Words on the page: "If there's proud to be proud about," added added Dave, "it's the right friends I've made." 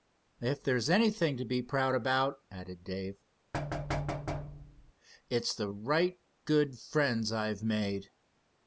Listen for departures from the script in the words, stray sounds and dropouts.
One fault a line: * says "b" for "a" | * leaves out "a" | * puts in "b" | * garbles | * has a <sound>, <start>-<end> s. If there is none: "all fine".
* says "anything" for "proud"
* leaves out "added"
* has a thud, 3.5-4.9 s
* puts in "good"